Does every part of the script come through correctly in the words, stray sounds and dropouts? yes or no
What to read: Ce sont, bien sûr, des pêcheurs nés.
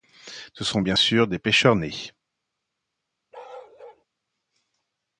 no